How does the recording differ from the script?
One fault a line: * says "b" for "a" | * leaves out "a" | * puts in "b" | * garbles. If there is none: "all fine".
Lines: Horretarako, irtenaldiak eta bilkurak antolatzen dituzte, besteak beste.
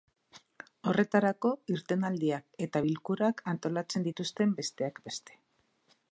all fine